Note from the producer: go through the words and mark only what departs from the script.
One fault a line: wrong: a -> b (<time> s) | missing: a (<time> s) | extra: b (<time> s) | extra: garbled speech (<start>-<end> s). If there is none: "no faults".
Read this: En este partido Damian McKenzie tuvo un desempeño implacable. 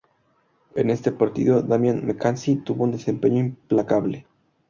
no faults